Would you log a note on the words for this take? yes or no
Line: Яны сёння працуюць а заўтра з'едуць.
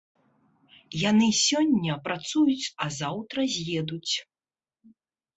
no